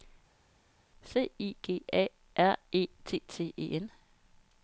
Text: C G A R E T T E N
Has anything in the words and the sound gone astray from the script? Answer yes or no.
yes